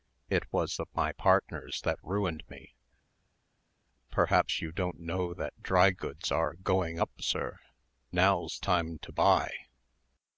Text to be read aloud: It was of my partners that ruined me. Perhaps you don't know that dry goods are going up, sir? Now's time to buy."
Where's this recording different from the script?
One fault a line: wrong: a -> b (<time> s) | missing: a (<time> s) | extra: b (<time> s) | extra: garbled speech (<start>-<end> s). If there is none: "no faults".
no faults